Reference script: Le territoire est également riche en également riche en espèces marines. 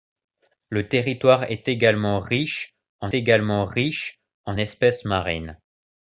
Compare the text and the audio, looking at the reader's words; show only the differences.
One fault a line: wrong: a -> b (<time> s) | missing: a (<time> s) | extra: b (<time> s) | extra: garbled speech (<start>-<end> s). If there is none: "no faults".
no faults